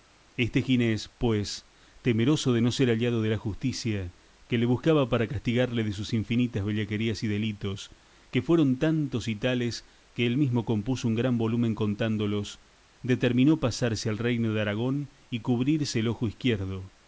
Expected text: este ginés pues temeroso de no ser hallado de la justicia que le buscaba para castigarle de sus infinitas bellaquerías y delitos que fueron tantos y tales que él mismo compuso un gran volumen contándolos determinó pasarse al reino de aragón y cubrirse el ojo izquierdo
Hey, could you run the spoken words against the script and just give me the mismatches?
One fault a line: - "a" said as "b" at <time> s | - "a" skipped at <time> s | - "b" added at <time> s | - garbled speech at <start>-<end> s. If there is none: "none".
none